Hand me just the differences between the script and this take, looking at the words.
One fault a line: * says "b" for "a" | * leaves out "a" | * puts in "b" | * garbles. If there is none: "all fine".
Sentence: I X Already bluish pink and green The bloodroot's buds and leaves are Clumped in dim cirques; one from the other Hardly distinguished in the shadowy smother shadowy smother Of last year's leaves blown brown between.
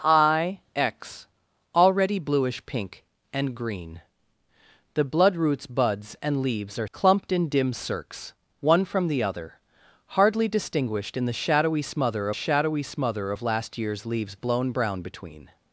all fine